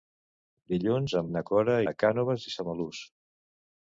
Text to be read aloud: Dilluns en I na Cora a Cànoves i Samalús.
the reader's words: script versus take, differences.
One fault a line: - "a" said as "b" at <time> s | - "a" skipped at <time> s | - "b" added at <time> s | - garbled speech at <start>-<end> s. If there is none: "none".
none